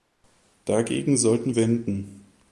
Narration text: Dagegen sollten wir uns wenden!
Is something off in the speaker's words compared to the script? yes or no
yes